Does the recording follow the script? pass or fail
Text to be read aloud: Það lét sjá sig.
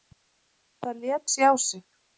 pass